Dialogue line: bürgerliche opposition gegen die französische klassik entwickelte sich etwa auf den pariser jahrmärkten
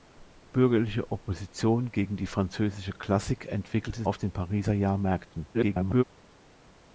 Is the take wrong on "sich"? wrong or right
wrong